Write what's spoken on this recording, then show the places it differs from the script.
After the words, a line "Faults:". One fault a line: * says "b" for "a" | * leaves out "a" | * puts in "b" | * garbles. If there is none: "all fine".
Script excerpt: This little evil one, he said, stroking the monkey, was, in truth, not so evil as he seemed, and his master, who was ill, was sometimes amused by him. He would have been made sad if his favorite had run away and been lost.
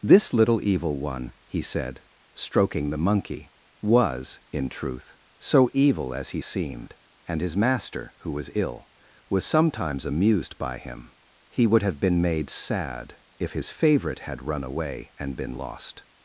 This little evil one, he said, stroking the monkey, was, in truth, so evil as he seemed, and his master, who was ill, was sometimes amused by him. He would have been made sad if his favorite had run away and been lost.
Faults:
* leaves out "not"